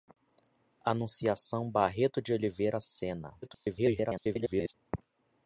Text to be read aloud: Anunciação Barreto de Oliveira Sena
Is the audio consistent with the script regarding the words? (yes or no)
no